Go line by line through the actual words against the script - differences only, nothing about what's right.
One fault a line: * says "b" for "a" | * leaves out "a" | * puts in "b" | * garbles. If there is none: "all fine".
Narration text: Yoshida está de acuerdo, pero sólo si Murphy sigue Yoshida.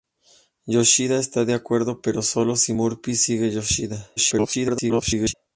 * garbles